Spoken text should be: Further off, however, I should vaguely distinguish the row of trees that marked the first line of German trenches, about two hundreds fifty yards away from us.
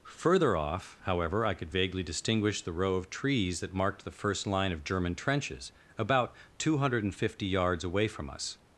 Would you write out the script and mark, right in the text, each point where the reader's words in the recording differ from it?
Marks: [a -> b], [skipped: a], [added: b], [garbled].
Further off, however, I [should -> could] vaguely distinguish the row of trees that marked the first line of German trenches, about two [hundreds -> hundred] fifty yards away from us.